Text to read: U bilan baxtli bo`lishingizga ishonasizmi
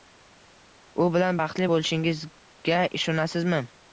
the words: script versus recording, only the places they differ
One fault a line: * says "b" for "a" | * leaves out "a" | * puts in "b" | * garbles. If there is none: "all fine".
all fine